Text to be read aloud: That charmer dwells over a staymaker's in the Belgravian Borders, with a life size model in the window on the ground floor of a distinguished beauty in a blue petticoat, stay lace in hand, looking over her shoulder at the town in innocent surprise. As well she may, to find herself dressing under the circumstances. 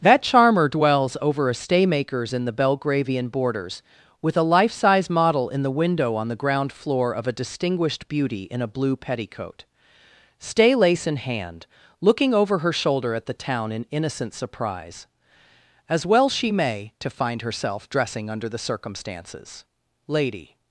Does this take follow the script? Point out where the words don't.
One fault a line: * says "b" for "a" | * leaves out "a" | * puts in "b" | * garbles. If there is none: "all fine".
* puts in "Lady"